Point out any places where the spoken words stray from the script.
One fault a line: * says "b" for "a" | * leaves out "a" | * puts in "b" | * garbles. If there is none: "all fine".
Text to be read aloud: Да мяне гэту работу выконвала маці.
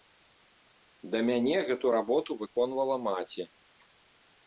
all fine